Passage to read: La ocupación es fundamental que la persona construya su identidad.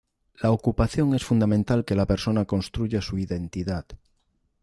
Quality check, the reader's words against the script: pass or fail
pass